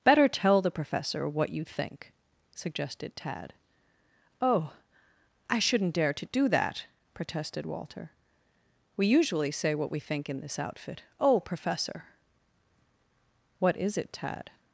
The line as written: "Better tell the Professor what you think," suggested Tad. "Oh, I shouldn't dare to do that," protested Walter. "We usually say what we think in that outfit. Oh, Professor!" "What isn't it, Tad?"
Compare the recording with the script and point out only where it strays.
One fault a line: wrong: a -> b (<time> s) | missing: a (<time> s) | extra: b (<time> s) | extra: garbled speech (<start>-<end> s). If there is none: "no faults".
wrong: that -> this (10.4 s)
wrong: isn't -> is (13.8 s)